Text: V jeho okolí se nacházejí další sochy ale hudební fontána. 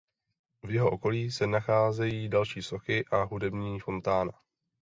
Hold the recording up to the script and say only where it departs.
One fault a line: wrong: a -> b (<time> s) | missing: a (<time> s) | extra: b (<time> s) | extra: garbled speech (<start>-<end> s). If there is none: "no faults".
wrong: ale -> a (3.0 s)